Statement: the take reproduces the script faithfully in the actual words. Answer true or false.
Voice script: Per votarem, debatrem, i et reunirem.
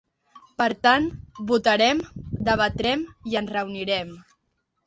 false